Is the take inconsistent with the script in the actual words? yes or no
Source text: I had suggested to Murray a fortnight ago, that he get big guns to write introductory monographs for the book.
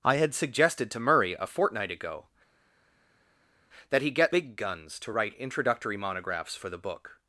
no